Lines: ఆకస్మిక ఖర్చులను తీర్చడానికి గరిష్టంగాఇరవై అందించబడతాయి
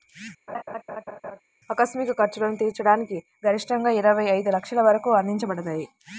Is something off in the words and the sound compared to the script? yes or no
yes